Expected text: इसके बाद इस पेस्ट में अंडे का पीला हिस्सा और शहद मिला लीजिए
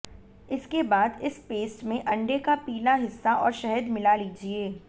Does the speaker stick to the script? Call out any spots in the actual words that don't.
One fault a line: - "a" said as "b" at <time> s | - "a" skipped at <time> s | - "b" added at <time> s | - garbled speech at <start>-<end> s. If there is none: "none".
none